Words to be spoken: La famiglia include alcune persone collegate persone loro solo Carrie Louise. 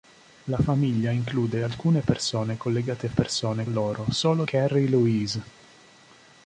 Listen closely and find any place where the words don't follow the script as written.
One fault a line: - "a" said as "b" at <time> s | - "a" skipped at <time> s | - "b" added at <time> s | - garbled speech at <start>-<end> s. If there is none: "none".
none